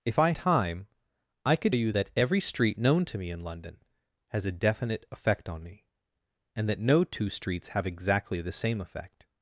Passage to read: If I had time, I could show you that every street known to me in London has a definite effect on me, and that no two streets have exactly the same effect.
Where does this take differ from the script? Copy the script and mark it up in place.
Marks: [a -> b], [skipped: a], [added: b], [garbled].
If I [skipped: had] time, I could [skipped: show] you that every street known to me in London has a definite effect on me, and that no two streets have exactly the same effect.